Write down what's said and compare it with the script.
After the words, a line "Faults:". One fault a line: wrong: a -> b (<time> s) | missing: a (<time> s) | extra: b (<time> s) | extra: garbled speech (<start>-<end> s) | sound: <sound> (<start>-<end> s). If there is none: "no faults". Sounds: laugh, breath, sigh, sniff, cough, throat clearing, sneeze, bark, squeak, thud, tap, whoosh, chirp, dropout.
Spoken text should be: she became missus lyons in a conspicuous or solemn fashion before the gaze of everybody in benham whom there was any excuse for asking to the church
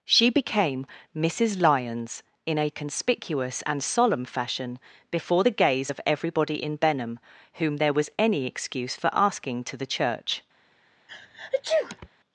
she became missus lyons in a conspicuous and solemn fashion before the gaze of everybody in benham whom there was any excuse for asking to the church
Faults:
wrong: or -> and (3.7 s)
sound: sneeze (11.1-12.1 s)